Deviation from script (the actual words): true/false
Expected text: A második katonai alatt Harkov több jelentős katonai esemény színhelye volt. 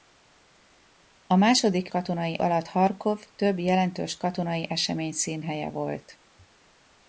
false